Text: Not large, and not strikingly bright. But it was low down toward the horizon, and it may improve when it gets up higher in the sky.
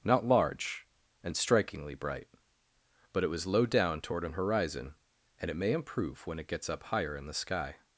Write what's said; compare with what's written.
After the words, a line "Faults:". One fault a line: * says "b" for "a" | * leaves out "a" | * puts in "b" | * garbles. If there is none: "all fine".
Not large, and strikingly bright. But it was low down toward an horizon, and it may improve when it gets up higher in the sky.
Faults:
* leaves out "not"
* says "an" for "the"